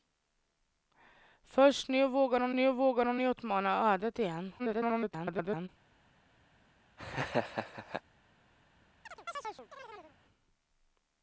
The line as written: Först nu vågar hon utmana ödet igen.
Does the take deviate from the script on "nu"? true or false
false